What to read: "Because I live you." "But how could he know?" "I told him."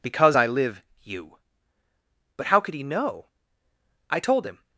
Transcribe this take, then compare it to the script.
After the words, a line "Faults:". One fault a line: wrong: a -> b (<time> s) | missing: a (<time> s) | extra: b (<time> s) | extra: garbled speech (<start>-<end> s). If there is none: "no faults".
"Because I live you." "But how could he know?" "I told him."
Faults:
no faults